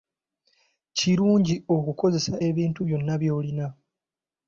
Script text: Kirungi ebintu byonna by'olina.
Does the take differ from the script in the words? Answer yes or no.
yes